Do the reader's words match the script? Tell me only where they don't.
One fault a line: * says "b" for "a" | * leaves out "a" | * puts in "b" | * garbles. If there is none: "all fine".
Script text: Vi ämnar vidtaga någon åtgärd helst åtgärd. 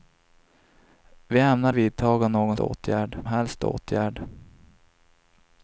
all fine